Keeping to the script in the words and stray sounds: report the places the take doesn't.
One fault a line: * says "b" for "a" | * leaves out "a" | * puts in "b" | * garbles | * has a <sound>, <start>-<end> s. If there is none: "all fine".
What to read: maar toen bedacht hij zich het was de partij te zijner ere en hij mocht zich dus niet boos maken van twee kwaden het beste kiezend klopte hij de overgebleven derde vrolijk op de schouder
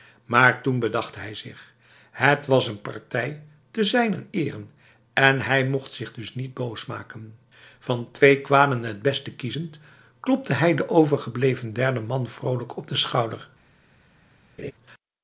* says "een" for "de"
* puts in "man"
* has a laugh, 14.6-14.7 s